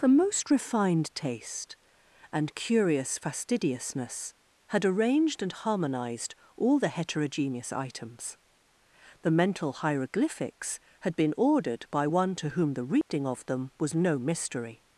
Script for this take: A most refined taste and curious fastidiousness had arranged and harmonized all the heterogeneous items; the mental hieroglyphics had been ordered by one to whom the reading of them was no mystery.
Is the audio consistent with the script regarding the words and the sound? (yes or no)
no